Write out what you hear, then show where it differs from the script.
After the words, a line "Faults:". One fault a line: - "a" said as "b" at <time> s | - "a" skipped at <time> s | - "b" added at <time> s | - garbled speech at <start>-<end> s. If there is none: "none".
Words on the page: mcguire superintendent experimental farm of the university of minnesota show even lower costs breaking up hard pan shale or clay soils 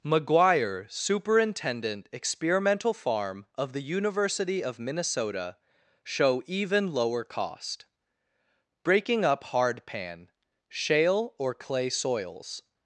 mcguire superintendent experimental farm of the university of minnesota show even lower cost breaking up hard pan shale or clay soils
Faults:
- "costs" said as "cost" at 7.2 s